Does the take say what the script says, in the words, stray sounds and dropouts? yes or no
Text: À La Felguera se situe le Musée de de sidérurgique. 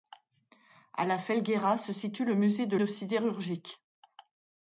yes